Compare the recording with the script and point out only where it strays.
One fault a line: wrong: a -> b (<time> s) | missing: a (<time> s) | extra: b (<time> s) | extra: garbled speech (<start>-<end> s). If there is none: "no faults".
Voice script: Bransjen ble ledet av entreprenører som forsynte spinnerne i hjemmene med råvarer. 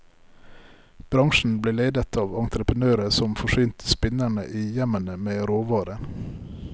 no faults